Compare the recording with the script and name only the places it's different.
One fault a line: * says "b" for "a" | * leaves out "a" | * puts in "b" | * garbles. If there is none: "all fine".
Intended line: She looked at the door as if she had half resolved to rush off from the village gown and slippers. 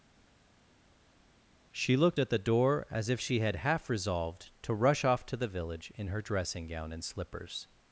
* says "to" for "from"
* puts in "in her dressing"